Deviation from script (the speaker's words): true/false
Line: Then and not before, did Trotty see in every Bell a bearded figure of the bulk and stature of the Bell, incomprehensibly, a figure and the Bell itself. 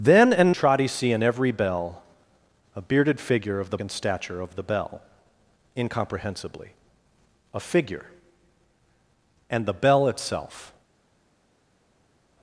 true